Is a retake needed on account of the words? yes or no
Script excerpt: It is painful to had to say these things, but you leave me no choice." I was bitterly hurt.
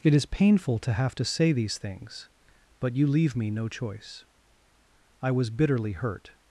yes